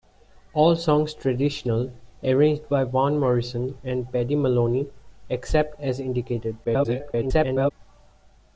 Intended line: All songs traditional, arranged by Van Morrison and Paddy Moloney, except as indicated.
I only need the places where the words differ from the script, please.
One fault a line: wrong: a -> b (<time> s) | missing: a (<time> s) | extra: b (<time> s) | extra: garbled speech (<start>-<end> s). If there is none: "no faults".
extra: garbled speech (6.6-7.7 s)